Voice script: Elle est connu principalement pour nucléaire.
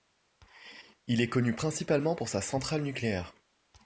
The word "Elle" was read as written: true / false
false